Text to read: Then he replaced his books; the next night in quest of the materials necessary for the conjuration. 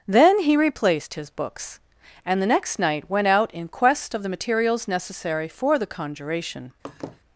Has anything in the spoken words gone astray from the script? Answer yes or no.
yes